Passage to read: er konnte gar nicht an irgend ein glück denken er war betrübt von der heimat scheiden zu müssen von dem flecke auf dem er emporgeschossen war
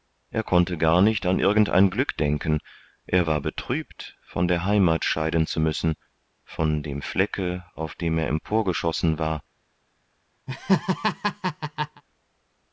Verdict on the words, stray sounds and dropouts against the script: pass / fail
fail